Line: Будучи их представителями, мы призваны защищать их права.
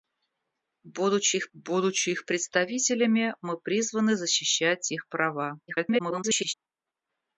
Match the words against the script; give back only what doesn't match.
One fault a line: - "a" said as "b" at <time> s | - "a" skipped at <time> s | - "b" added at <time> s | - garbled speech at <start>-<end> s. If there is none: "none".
- "будучи их" added at 1.5 s
- garbled speech at 5.7-6.5 s